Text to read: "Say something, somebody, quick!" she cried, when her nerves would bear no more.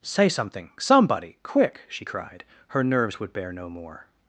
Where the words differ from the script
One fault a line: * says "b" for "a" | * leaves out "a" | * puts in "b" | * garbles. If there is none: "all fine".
* leaves out "when"